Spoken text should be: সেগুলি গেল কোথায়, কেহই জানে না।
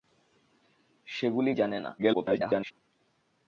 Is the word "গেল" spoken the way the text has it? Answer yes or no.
no